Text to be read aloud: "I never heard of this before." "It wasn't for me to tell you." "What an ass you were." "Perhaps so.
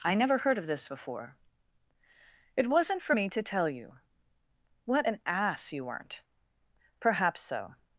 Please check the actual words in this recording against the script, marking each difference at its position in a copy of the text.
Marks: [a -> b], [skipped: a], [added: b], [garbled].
"I never heard of this before." "It wasn't for me to tell you." "What an ass you [were." -> weren't] "Perhaps so.